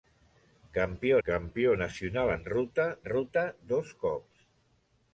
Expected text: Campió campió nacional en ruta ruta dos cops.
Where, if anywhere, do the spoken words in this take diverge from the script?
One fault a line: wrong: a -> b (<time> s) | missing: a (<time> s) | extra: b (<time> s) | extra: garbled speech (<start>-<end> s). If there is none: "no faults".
no faults